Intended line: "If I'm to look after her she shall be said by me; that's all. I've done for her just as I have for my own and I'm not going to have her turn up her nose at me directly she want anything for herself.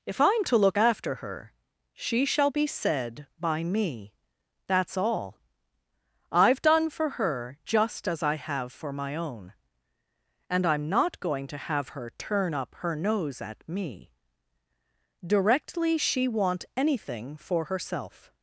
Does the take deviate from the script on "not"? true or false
false